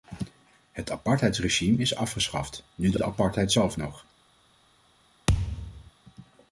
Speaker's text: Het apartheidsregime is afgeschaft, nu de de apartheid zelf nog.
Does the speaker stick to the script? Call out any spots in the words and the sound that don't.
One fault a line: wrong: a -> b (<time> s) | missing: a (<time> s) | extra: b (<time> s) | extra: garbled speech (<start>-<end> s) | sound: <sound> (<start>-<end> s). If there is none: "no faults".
sound: thud (5.3-5.9 s)